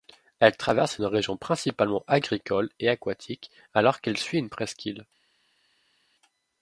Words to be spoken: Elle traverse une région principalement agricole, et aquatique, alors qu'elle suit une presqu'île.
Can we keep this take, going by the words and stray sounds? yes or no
yes